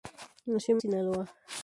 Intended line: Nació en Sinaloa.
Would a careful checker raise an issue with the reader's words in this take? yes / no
no